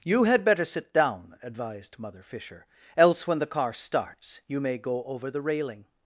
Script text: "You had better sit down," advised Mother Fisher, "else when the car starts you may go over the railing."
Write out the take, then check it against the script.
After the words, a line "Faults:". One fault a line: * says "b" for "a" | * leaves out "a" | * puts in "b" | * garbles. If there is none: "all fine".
"You had better sit down," advised Mother Fisher, "else when the car starts you may go over the railing."
Faults:
all fine